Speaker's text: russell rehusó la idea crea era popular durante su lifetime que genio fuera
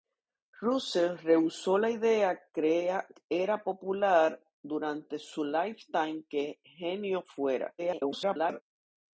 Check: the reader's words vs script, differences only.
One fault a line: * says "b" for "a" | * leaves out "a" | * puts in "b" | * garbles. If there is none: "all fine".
* garbles